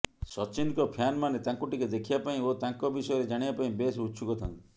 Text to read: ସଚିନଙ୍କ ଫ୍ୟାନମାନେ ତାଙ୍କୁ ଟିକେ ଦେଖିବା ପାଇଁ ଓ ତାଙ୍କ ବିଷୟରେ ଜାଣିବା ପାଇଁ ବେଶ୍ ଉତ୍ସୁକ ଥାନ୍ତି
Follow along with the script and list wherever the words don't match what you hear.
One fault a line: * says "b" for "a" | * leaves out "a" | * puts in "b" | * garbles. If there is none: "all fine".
all fine